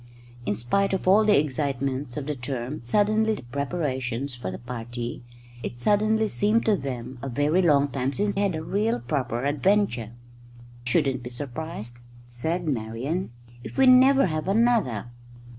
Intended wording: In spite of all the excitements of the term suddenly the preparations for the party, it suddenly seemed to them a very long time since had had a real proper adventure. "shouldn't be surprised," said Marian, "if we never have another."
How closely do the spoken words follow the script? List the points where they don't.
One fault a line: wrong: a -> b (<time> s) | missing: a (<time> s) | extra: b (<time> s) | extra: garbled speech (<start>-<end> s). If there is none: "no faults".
no faults